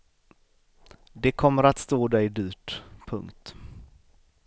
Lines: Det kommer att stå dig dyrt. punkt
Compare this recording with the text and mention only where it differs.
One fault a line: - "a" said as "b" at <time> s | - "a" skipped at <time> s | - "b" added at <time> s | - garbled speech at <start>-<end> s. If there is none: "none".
none